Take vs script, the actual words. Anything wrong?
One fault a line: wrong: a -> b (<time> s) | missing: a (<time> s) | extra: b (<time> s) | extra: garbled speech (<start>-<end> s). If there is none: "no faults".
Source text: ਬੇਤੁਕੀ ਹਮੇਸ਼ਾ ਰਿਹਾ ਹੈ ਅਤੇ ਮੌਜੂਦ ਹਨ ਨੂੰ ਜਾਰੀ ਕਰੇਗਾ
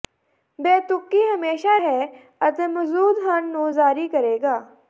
missing: ਰਿਹਾ (1.8 s)